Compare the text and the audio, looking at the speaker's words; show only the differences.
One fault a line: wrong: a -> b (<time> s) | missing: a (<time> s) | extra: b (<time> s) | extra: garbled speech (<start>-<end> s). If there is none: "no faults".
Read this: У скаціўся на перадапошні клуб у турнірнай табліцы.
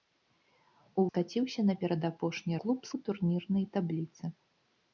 no faults